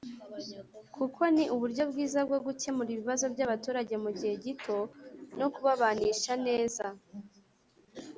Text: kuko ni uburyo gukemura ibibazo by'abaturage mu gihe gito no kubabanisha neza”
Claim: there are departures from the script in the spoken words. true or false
true